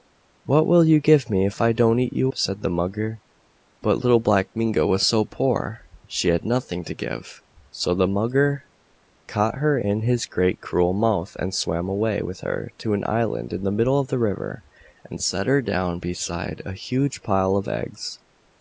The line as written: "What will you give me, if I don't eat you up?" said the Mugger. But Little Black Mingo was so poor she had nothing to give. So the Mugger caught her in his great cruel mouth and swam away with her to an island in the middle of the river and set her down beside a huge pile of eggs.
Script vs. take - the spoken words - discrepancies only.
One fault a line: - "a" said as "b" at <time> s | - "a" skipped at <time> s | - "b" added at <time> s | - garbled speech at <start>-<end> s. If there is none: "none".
- "up" skipped at 2.3 s